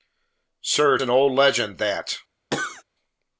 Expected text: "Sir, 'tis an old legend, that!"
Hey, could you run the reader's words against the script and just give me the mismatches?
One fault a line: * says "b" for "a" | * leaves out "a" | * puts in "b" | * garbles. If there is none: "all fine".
* leaves out "tis"